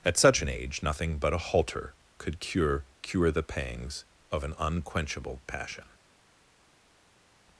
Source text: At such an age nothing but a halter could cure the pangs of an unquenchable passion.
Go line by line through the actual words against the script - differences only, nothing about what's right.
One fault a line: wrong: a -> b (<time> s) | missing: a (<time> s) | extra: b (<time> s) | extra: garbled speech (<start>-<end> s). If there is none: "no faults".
extra: cure (3.0 s)